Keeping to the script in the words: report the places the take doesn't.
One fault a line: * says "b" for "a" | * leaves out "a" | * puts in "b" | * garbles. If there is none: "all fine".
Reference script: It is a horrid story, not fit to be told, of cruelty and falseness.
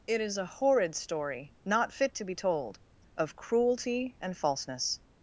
all fine